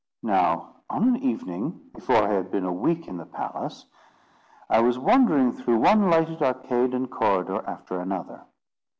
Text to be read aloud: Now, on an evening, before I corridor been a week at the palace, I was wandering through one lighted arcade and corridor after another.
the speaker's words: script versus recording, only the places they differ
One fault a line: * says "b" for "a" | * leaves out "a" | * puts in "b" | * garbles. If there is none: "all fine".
* says "had" for "corridor"
* says "in" for "at"